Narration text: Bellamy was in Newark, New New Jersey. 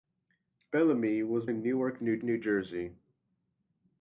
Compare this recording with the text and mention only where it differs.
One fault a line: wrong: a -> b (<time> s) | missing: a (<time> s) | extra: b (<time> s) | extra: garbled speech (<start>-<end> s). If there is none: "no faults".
no faults